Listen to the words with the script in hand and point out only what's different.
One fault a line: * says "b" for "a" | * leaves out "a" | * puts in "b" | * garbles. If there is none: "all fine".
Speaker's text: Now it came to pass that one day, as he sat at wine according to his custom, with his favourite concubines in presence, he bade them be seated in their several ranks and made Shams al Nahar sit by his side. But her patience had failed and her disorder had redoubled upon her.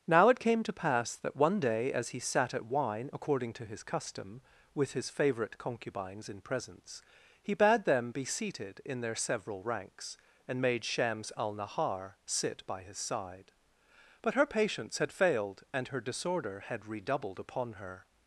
all fine